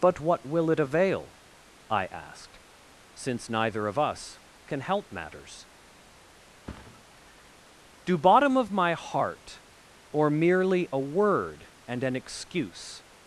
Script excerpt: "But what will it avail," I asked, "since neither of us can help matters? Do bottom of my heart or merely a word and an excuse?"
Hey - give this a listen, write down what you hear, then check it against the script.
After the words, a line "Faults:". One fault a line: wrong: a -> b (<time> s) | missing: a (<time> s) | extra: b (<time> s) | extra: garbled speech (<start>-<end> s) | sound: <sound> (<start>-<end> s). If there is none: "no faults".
"But what will it avail," I asked, "since neither of us can help matters? Do bottom of my heart or merely a word and an excuse?"
Faults:
sound: thud (6.7-7.0 s)